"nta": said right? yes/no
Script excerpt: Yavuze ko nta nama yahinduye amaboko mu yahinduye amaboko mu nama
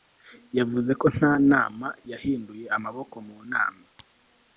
yes